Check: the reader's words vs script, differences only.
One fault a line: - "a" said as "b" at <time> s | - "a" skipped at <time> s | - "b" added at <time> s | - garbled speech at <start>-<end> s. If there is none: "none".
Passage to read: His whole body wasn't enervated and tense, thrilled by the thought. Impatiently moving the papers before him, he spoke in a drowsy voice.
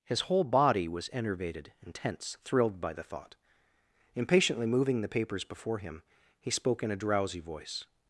- "wasn't" said as "was" at 0.9 s